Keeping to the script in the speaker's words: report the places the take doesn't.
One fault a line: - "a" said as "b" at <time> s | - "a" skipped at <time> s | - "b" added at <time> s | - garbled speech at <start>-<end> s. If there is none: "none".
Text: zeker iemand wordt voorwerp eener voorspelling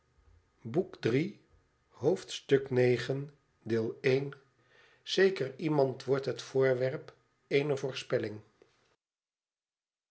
- "het" added at 6.2 s